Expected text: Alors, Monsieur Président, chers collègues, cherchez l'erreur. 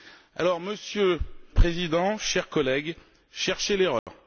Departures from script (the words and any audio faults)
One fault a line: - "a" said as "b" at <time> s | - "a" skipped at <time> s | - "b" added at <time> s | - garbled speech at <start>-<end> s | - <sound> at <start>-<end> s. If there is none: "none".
- dropout at 4.0-4.1 s